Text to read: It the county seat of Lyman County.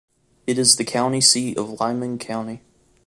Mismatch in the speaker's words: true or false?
true